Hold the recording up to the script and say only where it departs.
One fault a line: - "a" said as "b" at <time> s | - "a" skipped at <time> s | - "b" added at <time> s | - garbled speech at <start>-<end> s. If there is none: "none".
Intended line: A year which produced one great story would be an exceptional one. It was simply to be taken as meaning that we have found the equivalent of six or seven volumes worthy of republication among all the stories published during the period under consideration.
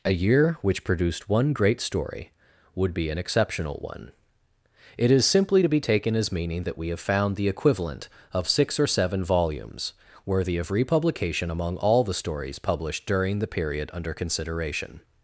- "was" said as "is" at 5.1 s